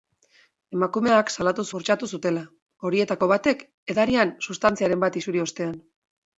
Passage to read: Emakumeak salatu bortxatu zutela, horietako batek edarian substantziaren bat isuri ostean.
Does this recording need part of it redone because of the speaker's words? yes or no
no